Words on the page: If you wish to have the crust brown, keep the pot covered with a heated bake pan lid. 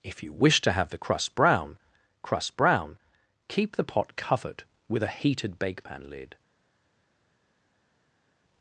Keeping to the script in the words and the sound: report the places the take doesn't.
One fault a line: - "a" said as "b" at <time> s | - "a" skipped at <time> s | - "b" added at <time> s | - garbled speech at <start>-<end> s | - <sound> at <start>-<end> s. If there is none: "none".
- "crust brown" added at 2.2 s